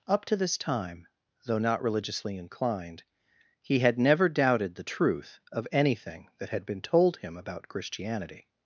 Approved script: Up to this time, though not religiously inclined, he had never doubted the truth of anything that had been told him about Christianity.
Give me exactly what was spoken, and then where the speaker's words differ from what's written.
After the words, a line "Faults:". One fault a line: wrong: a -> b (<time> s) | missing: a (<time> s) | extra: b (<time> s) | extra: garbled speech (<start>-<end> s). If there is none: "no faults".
Up to this time, though not religiously inclined, he had never doubted the truth of anything that had been told him about Christianity.
Faults:
no faults